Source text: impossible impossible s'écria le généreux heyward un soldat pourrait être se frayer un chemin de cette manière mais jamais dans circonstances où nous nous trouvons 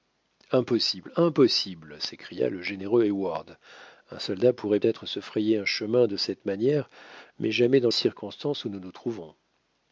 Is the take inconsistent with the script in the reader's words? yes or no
no